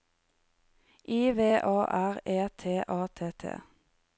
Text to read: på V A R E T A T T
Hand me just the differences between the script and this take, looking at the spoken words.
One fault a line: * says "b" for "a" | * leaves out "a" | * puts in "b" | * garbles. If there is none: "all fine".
* says "I" for "på"